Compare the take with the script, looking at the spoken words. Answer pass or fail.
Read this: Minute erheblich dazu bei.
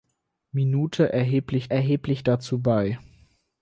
fail